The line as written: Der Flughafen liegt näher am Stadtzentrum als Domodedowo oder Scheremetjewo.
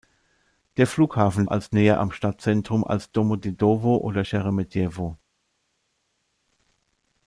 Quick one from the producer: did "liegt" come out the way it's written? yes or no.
no